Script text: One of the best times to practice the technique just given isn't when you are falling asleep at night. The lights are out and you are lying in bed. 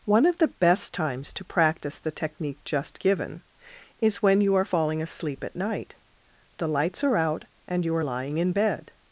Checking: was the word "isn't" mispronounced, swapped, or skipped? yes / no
yes